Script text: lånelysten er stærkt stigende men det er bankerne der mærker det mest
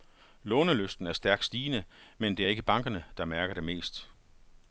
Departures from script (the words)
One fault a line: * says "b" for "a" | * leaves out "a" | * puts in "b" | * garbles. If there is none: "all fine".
* puts in "ikke"